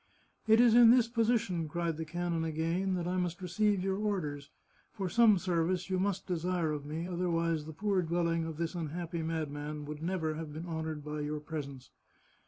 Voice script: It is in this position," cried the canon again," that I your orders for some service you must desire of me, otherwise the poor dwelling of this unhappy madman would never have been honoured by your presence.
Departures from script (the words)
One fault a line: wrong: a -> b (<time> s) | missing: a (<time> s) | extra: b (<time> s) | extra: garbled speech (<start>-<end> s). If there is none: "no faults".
extra: must receive (3.2 s)